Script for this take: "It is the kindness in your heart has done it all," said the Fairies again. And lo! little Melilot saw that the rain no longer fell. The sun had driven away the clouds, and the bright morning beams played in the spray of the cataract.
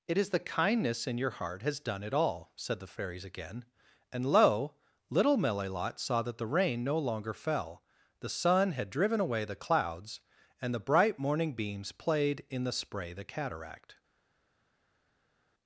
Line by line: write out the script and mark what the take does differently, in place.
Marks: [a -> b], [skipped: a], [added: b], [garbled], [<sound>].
"It is the kindness in your heart has done it all," said the Fairies again. And lo! little Melilot saw that the rain no longer fell. The sun had driven away the clouds, and the bright morning beams played in the spray [skipped: of] the cataract.